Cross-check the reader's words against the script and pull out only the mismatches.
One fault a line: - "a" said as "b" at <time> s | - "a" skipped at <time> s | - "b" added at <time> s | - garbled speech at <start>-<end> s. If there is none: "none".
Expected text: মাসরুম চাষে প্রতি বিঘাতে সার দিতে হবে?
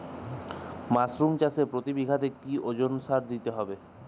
- "কি ওজনে" added at 2.4 s